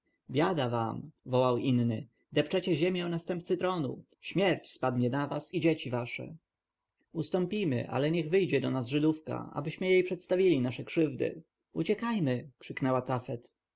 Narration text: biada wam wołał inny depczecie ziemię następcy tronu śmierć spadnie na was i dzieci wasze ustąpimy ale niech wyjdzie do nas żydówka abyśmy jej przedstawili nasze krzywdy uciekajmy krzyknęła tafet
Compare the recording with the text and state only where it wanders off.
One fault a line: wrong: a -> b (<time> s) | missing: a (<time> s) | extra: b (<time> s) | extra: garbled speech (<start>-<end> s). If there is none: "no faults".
no faults